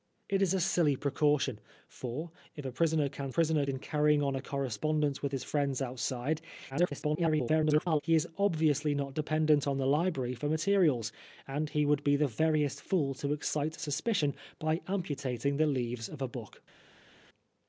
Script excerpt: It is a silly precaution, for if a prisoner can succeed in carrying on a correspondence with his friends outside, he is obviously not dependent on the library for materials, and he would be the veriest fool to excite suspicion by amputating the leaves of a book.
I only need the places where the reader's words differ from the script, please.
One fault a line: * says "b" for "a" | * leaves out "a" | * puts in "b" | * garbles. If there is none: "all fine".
* says "prisoner" for "succeed"
* garbles